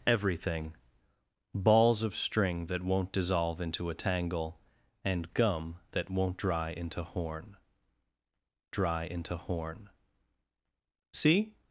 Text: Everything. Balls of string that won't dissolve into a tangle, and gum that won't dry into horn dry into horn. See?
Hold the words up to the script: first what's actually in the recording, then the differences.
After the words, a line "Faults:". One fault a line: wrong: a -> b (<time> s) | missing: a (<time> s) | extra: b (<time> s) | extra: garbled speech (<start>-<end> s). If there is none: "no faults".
Everything. Balls of string that won't dissolve into a tangle, and gum that won't dry into horn dry into horn. See?
Faults:
no faults